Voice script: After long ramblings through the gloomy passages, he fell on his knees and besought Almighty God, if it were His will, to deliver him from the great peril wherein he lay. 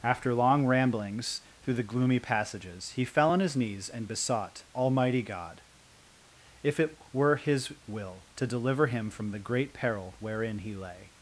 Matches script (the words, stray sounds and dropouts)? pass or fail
pass